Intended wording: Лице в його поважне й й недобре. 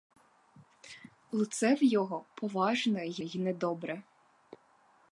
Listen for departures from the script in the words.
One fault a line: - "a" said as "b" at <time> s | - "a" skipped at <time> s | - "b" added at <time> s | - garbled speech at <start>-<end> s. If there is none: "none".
none